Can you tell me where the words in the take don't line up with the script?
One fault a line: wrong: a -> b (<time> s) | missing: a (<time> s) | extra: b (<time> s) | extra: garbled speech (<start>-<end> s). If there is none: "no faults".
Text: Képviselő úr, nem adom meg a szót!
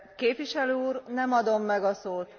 no faults